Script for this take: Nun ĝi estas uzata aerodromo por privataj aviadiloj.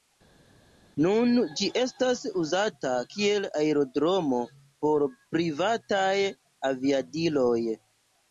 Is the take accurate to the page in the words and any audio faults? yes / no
no